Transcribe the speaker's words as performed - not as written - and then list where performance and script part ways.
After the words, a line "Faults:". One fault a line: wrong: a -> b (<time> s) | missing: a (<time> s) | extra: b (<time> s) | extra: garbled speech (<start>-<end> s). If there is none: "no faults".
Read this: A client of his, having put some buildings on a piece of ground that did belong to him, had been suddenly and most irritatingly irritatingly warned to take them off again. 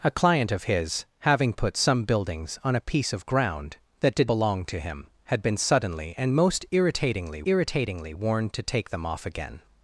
A client of his, having put some buildings on a piece of ground that did belong to him, had been suddenly and most irritatingly irritatingly warned to take them off again.
Faults:
no faults